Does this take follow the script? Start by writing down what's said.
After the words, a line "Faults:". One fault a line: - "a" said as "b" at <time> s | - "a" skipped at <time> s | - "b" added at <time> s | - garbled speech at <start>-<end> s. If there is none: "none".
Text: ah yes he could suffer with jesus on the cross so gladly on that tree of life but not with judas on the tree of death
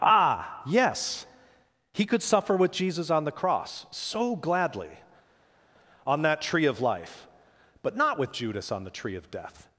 ah yes he could suffer with jesus on the cross so gladly on that tree of life but not with judas on the tree of death
Faults:
none